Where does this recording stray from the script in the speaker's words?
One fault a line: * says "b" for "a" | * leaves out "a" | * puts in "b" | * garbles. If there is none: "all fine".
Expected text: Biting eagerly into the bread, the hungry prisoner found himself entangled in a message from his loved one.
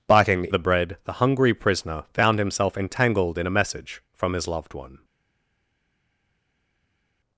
* leaves out "eagerly into"